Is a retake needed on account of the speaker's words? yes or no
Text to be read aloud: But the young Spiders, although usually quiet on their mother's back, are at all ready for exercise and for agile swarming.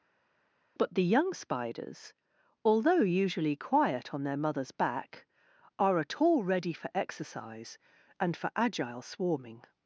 no